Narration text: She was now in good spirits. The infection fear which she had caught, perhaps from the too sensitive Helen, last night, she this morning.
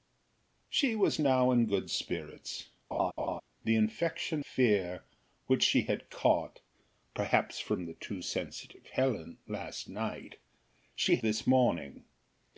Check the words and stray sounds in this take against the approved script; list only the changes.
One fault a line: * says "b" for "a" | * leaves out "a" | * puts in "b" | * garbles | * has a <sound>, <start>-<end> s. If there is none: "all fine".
* has a laugh, 2.9-3.4 s